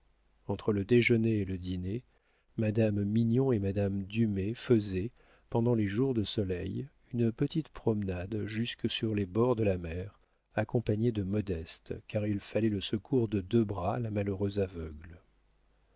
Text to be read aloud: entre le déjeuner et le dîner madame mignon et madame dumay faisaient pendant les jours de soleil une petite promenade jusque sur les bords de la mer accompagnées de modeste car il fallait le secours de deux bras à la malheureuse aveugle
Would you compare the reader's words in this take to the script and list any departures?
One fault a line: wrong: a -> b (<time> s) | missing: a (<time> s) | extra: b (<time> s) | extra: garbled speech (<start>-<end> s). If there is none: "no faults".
no faults